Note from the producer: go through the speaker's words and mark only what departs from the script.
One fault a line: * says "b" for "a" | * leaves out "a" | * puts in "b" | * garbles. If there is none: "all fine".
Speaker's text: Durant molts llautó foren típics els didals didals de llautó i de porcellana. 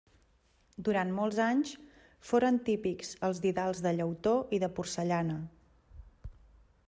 * says "anys" for "llautó"
* leaves out "didals"